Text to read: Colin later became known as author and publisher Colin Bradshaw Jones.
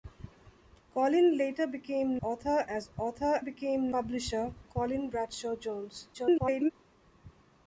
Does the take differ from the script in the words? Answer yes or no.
yes